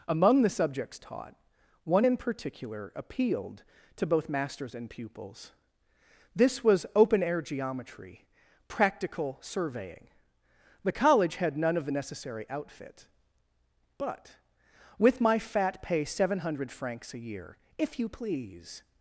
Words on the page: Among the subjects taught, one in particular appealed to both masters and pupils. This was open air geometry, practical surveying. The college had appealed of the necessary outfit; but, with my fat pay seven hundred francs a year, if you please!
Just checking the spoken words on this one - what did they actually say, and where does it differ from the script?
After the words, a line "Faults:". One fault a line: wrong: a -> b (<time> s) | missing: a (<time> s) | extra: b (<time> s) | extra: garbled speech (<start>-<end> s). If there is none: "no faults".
Among the subjects taught, one in particular appealed to both masters and pupils. This was open air geometry, practical surveying. The college had none of the necessary outfit; but, with my fat pay seven hundred francs a year, if you please!
Faults:
wrong: appealed -> none (11.6 s)